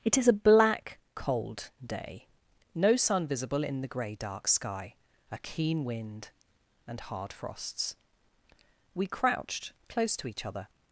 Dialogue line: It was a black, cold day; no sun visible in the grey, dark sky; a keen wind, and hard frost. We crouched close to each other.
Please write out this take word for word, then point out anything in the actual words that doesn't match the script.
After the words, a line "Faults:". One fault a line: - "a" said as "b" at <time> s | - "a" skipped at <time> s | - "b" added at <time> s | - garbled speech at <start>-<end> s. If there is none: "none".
It is a black, cold day; no sun visible in the grey, dark sky; a keen wind, and hard frosts. We crouched close to each other.
Faults:
- "was" said as "is" at 0.2 s
- "frost" said as "frosts" at 7.3 s